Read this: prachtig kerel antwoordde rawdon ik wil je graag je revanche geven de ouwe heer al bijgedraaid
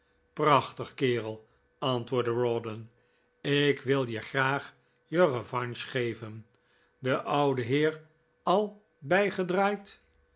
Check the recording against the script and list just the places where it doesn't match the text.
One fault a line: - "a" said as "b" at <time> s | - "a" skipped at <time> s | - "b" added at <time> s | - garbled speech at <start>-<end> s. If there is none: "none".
none